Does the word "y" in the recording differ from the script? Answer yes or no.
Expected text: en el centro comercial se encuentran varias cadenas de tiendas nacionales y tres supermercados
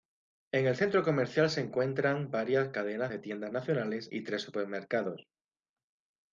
no